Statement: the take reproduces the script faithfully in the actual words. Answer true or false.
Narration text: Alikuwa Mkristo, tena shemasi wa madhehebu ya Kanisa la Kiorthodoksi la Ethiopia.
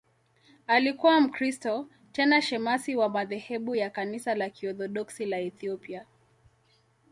true